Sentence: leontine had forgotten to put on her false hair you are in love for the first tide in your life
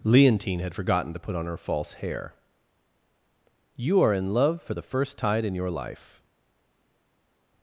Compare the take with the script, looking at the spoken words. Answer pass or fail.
pass